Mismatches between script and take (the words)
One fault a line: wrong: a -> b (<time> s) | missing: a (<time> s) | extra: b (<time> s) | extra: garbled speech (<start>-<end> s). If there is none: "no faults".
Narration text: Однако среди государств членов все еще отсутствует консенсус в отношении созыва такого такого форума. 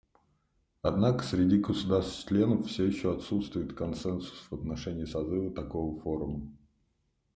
missing: такого (6.0 s)